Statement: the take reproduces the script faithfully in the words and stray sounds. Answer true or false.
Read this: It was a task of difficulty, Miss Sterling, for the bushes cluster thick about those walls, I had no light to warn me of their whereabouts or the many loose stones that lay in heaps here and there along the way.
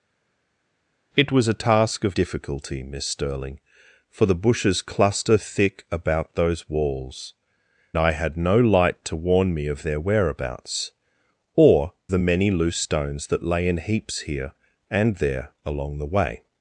true